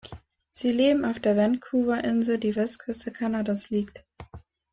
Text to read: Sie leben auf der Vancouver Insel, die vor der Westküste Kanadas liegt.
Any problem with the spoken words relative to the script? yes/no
yes